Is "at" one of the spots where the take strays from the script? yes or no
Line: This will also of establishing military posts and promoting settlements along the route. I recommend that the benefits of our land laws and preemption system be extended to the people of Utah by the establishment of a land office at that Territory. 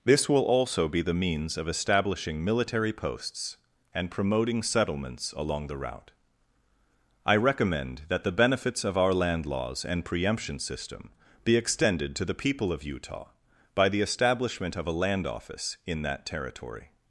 yes